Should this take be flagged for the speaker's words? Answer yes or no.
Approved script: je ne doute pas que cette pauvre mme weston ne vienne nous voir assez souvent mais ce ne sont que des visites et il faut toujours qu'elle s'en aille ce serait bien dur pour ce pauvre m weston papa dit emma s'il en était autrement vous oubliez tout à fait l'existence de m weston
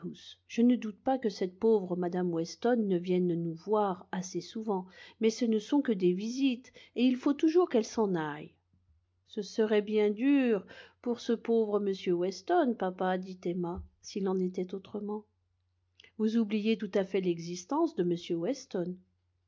no